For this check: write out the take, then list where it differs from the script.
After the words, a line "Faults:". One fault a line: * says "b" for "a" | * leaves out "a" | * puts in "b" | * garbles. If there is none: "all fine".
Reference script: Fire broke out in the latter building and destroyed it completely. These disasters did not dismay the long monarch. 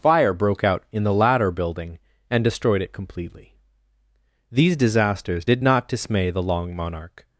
Fire broke out in the latter building and destroyed it completely. These disasters did not dismay the long monarch.
Faults:
all fine